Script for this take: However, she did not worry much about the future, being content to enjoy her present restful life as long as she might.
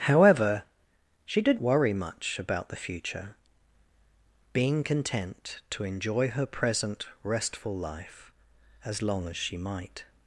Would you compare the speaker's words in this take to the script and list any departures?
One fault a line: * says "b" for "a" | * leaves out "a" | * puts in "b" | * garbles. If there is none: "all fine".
* leaves out "not"